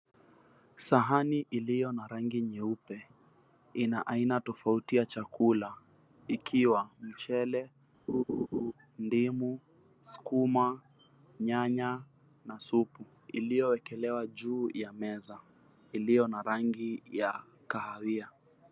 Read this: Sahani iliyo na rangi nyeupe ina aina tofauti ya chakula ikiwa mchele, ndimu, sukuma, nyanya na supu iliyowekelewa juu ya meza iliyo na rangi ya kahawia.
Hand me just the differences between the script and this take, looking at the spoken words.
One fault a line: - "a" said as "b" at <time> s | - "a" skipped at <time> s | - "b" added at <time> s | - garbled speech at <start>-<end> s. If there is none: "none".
none